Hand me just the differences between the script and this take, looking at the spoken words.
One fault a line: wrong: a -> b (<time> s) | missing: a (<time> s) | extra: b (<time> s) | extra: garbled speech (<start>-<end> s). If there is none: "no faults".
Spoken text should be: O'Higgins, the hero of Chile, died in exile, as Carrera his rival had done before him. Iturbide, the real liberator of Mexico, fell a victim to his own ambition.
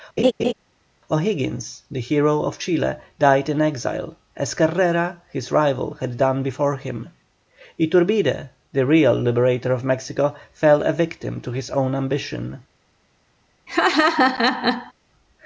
no faults